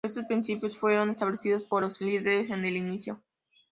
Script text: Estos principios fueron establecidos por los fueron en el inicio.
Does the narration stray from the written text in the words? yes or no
yes